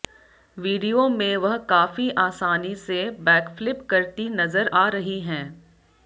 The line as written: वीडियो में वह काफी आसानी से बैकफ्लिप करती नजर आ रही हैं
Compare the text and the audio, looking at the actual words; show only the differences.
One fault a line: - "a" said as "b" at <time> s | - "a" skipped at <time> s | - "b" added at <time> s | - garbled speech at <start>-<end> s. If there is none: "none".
none